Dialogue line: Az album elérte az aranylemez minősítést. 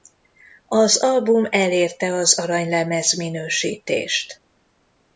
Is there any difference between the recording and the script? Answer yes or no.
no